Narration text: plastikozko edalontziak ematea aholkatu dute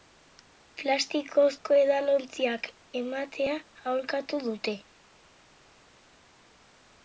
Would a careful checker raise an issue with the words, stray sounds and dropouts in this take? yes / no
no